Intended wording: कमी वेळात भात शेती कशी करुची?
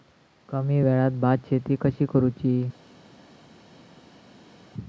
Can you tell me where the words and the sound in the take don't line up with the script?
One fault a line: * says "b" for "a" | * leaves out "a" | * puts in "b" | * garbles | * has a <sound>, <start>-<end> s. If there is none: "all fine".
all fine